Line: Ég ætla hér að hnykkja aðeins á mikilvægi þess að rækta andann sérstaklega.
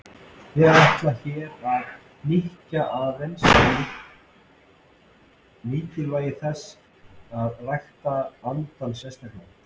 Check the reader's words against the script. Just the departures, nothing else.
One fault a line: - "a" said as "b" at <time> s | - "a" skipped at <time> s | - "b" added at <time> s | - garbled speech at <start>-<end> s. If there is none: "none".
none